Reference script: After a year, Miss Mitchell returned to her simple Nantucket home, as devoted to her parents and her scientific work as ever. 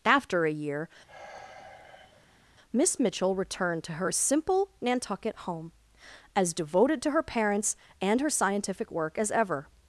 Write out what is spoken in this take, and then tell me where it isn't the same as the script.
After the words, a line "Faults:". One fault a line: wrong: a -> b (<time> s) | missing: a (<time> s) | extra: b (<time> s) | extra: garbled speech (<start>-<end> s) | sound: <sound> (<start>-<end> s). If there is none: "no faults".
After a year, Miss Mitchell returned to her simple Nantucket home, as devoted to her parents and her scientific work as ever.
Faults:
sound: sigh (1.1-2.5 s)